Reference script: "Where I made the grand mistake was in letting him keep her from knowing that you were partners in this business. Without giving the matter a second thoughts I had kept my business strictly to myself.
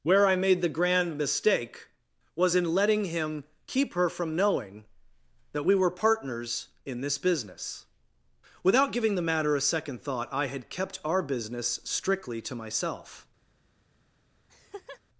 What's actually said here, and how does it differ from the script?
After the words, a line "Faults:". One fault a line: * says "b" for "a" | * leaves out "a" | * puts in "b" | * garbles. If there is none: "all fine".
"Where I made the grand mistake was in letting him keep her from knowing that we were partners in this business. Without giving the matter a second thought I had kept our business strictly to myself.
Faults:
* says "we" for "you"
* says "thought" for "thoughts"
* says "our" for "my"